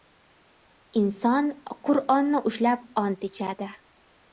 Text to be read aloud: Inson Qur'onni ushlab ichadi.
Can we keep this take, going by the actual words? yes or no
no